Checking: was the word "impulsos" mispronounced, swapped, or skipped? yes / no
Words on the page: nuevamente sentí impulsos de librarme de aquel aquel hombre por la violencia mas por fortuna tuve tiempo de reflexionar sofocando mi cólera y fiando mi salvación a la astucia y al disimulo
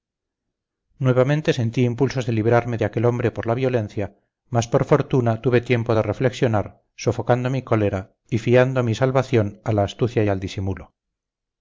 no